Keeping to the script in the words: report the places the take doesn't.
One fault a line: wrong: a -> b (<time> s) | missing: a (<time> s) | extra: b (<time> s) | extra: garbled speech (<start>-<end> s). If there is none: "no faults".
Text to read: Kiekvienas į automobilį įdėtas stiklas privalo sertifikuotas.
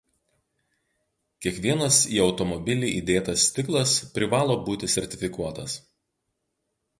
extra: būti (4.7 s)